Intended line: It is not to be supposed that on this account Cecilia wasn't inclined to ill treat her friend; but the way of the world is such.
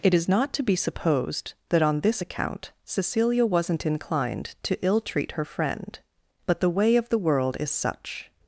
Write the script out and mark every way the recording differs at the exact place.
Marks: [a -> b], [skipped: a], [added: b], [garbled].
It is not to be supposed that on this account Cecilia wasn't inclined to ill treat her friend; but the way of the world is such.